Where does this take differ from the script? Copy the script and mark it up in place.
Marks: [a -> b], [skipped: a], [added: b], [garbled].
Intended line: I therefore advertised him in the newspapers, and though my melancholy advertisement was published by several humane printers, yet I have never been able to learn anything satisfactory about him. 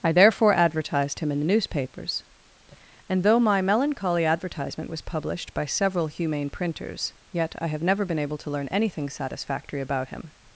I therefore advertised him in the newspapers, and though my melancholy advertisement was published by several humane printers, yet I have never been able to learn anything satisfactory about him.